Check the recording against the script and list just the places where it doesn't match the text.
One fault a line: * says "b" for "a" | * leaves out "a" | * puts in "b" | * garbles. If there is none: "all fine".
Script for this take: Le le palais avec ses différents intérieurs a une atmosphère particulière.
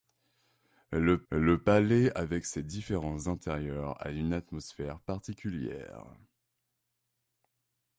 all fine